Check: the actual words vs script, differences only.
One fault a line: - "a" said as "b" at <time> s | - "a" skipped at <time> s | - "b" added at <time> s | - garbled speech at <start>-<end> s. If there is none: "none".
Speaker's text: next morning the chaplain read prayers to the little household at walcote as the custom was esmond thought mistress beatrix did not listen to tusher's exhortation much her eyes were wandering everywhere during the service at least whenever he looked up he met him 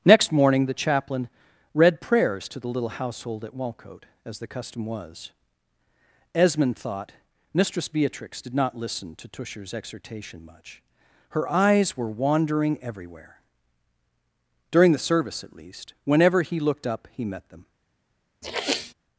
- "him" said as "them" at 17.5 s